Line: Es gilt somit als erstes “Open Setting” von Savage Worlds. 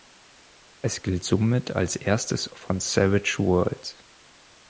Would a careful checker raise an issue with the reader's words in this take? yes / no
yes